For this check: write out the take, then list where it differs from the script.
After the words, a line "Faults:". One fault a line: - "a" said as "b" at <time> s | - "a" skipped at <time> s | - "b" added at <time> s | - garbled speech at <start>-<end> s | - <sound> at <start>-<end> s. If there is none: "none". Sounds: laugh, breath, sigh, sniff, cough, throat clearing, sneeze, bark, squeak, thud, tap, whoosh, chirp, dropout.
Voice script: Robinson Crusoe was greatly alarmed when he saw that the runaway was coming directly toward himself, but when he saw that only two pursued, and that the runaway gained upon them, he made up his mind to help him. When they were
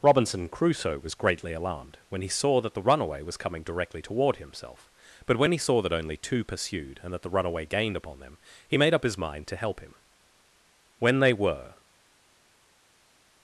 Robinson Crusoe was greatly alarmed when he saw that the runaway was coming directly toward himself, but when he saw that only two pursued, and that the runaway gained upon them, he made up his mind to help him. When they were
Faults:
none